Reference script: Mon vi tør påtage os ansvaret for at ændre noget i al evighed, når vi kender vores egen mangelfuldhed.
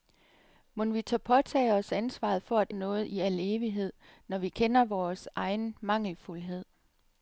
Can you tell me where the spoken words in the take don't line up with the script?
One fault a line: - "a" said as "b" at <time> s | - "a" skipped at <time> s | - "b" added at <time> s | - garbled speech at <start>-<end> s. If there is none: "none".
- "ændre" skipped at 2.7 s